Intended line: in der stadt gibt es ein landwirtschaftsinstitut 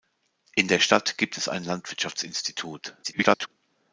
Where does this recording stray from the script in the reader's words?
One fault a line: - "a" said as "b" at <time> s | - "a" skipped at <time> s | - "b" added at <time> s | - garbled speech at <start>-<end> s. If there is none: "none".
- garbled speech at 3.0-3.5 s